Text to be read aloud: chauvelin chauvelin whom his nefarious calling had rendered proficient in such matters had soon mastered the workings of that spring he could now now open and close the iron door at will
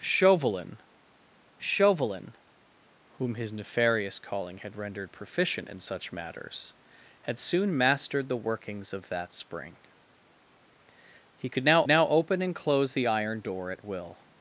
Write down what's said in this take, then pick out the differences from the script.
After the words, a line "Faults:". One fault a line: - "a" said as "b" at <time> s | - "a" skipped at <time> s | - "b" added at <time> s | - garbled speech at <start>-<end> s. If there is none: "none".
chauvelin chauvelin whom his nefarious calling had rendered proficient in such matters had soon mastered the workings of that spring he could now now open and close the iron door at will
Faults:
none